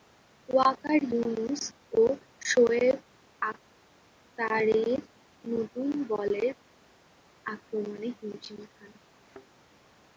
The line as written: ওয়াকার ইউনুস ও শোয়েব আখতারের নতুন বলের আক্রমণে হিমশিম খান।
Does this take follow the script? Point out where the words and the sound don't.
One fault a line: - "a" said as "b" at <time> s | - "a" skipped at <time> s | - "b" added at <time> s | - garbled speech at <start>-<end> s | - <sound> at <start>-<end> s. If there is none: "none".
- thud at 9.1-9.5 s